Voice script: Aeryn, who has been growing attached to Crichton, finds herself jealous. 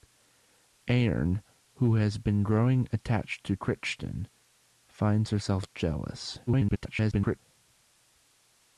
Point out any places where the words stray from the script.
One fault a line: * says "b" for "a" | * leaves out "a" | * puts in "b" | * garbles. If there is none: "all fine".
* garbles